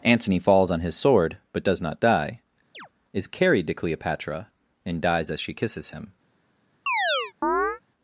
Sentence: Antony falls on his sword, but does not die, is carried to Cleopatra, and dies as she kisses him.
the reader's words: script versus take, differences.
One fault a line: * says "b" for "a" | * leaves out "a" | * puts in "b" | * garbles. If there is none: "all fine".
all fine